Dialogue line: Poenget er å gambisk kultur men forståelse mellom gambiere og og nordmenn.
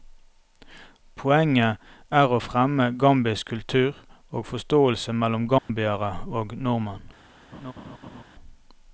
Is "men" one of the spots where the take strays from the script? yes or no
yes